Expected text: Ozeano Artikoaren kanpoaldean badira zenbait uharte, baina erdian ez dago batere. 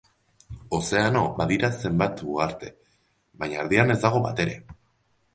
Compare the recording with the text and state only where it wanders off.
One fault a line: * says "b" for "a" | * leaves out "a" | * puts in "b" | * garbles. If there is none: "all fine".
* leaves out "Artikoaren kanpoaldean"